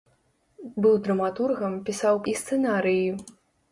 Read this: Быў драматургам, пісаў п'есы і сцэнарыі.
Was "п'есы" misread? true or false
true